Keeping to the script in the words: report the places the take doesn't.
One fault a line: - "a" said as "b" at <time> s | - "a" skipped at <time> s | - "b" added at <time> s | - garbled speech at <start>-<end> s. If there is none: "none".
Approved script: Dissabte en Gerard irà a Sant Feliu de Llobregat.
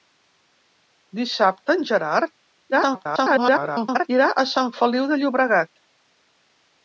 - garbled speech at 2.7-4.1 s